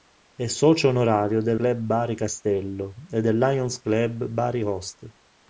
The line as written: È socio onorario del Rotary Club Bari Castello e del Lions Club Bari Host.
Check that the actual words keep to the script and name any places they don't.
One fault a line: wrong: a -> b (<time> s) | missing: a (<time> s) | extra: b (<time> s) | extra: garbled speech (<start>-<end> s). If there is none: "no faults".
missing: Rotary (1.6 s)